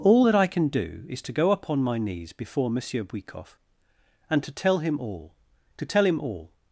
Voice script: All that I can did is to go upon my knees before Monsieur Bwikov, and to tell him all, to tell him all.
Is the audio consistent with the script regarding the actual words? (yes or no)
no